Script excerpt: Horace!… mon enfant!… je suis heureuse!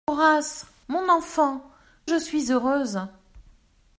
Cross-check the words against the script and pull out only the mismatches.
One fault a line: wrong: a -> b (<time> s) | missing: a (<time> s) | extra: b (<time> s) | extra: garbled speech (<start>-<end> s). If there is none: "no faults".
no faults